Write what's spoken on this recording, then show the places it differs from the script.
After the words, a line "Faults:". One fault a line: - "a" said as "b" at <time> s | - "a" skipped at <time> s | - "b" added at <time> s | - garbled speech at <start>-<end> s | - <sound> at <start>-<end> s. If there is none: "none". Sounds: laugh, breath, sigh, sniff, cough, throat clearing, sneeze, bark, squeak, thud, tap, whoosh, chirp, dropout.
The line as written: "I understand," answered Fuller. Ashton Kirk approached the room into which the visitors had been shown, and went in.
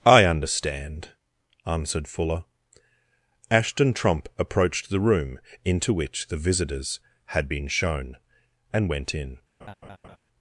"I understand," answered Fuller. Ashton Trump approached the room into which the visitors had been shown, and went in.
Faults:
- "Kirk" said as "Trump" at 3.9 s
- laugh at 9.6-10.2 s